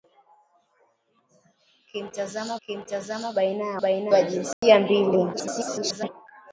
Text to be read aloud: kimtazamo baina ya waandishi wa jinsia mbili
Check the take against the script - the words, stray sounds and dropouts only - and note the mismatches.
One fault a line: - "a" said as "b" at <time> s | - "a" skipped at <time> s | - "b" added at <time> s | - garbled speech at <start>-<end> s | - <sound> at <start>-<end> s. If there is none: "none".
- "kimtazamo" added at 2.6 s
- "waandishi" said as "baina" at 3.8 s
- dropout at 4.5-4.6 s
- garbled speech at 5.3-6.1 s